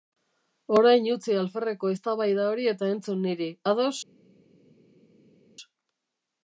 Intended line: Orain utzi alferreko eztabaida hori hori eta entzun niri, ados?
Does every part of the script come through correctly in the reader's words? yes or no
no